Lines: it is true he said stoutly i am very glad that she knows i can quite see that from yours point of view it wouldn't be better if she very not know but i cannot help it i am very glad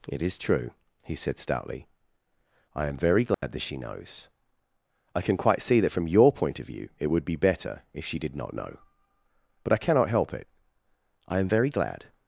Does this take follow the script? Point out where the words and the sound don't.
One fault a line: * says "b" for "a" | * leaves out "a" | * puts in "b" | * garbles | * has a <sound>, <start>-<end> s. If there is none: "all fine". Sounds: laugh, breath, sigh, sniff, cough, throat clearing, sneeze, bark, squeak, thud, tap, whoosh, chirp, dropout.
* has a dropout, 3.3-3.4 s
* says "your" for "yours"
* says "would" for "wouldn't"
* says "did" for "very"